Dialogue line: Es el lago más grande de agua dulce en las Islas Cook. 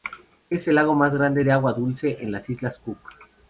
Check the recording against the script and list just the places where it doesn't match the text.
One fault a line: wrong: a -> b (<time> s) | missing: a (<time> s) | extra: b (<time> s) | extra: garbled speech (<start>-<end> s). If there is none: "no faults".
no faults